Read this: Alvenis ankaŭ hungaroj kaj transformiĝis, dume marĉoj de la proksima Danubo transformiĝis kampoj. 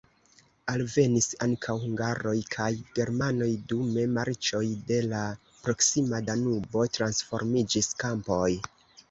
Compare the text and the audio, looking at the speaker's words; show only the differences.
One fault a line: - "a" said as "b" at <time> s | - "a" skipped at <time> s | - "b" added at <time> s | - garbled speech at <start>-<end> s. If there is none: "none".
- "transformiĝis" said as "germanoj" at 3.0 s